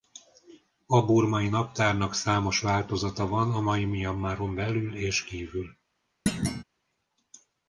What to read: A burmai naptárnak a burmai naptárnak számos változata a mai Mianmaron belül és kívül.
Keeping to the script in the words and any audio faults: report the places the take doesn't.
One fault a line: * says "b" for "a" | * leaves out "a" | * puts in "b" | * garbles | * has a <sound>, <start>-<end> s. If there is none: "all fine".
* leaves out "a burmai naptárnak"
* puts in "van"
* has a thud, 6.3-6.6 s